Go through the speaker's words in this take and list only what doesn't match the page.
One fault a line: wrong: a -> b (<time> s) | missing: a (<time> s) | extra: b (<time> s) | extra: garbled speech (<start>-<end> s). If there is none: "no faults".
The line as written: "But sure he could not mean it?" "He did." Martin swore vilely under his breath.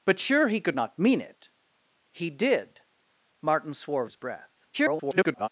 missing: vilely under (4.0 s)
extra: garbled speech (4.7-5.5 s)